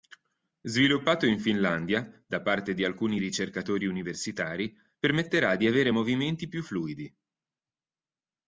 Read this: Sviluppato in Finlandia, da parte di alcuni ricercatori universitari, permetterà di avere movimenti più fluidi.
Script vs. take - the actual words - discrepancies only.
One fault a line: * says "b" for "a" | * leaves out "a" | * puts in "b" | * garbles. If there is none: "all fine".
all fine